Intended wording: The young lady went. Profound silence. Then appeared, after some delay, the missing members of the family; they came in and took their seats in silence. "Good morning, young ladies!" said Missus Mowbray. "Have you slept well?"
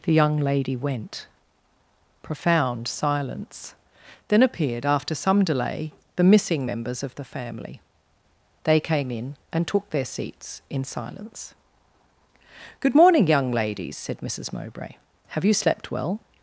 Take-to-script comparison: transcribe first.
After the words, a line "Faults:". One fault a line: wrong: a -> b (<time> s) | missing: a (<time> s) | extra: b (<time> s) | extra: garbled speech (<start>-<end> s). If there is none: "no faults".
The young lady went. Profound silence. Then appeared, after some delay, the missing members of the family; they came in and took their seats in silence. "Good morning, young ladies!" said Missus Mowbray. "Have you slept well?"
Faults:
no faults